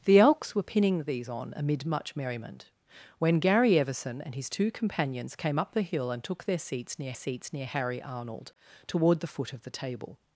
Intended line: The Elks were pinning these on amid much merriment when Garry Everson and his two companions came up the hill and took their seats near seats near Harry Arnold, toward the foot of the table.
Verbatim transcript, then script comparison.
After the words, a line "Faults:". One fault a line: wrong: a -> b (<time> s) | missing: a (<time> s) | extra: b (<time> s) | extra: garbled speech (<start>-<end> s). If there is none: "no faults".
The Elks were pinning these on amid much merriment when Garry Everson and his two companions came up the hill and took their seats near seats near Harry Arnold, toward the foot of the table.
Faults:
no faults